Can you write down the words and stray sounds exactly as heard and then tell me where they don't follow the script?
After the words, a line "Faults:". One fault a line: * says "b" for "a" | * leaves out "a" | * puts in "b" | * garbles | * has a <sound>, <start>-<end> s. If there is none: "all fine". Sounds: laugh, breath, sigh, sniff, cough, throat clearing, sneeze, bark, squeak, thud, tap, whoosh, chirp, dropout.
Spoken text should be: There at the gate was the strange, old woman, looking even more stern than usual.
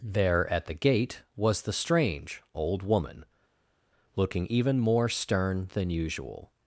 There at the gate was the strange, old woman, looking even more stern than usual.
Faults:
all fine